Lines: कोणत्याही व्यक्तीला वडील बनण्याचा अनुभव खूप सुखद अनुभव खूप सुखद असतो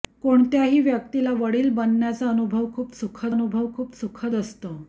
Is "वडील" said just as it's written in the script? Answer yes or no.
yes